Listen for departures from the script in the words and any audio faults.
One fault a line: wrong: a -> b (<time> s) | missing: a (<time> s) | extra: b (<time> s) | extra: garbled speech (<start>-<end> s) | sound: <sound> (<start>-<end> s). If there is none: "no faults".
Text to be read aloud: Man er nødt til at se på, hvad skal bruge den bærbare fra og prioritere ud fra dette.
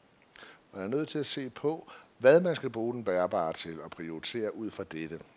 extra: man (2.4 s)
wrong: fra -> til (3.5 s)